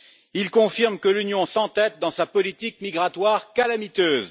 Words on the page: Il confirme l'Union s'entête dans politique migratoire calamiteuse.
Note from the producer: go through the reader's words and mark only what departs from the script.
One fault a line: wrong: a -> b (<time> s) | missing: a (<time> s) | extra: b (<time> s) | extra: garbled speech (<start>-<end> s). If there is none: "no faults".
extra: que (1.0 s)
extra: sa (2.1 s)